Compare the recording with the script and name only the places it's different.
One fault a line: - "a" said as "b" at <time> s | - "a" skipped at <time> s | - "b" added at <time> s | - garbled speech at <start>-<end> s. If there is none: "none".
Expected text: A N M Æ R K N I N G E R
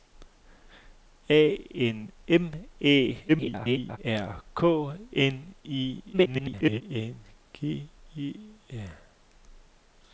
- garbled speech at 3.3-4.0 s
- garbled speech at 6.1-6.8 s